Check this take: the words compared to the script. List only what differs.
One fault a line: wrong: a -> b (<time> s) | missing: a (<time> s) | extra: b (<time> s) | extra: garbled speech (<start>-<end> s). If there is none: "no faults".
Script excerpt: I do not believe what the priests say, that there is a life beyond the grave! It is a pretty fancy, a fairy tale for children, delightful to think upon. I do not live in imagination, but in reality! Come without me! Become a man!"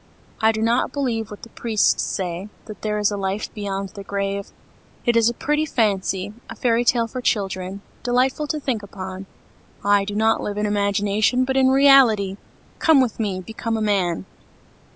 wrong: without -> with (13.0 s)